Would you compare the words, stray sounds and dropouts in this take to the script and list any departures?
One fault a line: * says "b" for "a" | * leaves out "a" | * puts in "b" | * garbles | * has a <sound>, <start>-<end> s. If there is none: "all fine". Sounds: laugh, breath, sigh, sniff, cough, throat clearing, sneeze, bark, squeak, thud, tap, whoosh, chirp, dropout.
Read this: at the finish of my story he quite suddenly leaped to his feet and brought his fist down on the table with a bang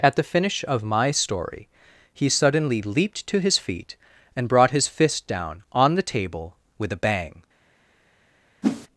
* leaves out "quite"
* has a whoosh, 8.6-8.9 s